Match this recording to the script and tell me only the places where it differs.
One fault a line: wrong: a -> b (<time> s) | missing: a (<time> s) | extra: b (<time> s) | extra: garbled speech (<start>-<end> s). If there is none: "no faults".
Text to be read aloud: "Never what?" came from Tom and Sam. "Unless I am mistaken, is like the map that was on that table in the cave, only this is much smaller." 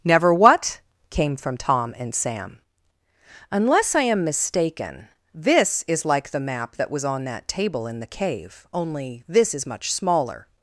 extra: this (5.3 s)